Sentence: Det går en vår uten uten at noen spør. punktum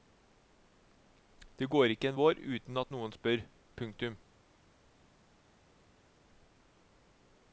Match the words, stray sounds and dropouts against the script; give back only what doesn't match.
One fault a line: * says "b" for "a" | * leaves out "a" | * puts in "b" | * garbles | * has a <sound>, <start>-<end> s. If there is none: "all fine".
* puts in "ikke"
* leaves out "uten"